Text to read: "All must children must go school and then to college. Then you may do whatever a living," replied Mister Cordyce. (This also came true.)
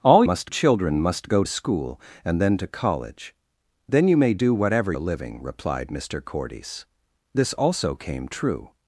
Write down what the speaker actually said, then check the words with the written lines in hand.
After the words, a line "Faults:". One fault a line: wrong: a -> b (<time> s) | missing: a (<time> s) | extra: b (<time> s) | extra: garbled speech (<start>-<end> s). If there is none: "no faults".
"All must children must go school and then to college. Then you may do whatever a living," replied Mister Cordyce. (This also came true.)
Faults:
no faults